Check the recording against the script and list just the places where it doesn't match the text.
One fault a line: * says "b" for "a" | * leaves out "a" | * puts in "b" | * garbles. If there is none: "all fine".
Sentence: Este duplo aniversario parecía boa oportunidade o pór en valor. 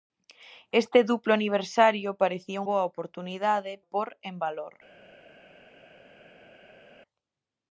all fine